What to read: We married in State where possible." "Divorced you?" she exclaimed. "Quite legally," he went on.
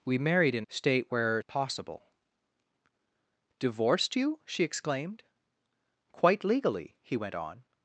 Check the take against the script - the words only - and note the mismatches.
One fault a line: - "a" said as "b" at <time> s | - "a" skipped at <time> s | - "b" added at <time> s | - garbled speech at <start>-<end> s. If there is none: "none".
none